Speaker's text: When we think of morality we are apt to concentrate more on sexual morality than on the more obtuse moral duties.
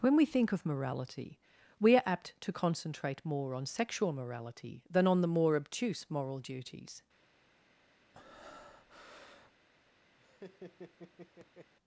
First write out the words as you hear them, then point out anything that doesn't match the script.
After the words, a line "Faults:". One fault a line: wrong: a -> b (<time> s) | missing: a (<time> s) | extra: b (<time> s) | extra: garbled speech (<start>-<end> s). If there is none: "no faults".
When we think of morality we are apt to concentrate more on sexual morality than on the more obtuse moral duties.
Faults:
no faults